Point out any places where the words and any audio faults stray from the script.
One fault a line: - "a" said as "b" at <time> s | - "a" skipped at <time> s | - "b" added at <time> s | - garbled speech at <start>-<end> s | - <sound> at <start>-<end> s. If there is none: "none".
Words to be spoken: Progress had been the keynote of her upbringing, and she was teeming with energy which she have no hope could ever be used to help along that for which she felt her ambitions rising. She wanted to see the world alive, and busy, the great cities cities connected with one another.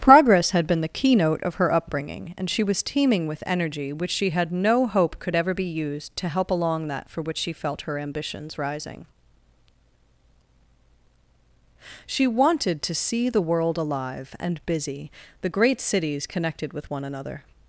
- "have" said as "had" at 4.3 s
- "cities" skipped at 16.3 s